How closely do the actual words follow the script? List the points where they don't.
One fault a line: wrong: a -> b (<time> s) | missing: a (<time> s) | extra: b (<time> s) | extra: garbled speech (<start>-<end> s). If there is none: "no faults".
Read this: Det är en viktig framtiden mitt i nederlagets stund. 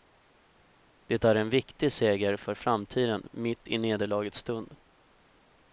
extra: seger för (1.9 s)